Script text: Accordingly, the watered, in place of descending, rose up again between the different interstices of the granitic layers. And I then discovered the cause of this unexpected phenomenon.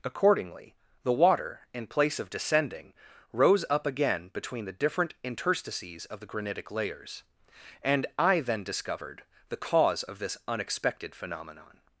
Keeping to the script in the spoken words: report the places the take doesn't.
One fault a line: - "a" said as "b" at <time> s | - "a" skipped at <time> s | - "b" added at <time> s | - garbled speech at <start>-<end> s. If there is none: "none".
- "watered" said as "water" at 1.1 s